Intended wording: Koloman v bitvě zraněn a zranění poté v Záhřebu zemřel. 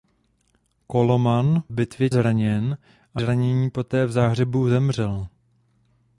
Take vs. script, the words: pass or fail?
pass